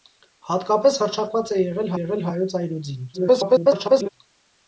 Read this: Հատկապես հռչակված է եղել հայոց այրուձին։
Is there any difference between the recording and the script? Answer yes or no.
yes